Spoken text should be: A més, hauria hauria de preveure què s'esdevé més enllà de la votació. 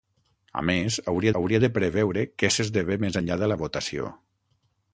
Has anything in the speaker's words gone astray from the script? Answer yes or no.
no